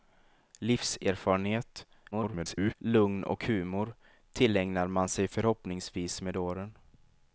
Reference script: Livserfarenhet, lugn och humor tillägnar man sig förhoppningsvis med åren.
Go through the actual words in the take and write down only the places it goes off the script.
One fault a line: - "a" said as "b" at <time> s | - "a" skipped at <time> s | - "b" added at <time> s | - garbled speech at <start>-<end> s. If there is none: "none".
- garbled speech at 2.1-2.7 s